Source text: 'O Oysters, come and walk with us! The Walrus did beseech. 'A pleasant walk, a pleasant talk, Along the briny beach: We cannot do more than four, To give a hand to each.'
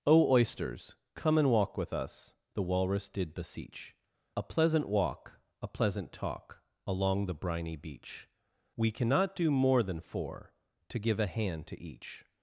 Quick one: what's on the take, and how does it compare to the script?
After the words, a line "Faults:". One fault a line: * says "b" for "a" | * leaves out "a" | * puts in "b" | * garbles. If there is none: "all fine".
'O Oysters, come and walk with us! The Walrus did beseech. 'A pleasant walk, a pleasant talk, Along the briny beach: We cannot do more than four, To give a hand to each.'
Faults:
all fine